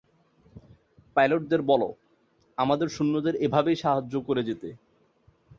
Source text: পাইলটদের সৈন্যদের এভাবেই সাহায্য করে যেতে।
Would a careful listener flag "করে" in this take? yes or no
no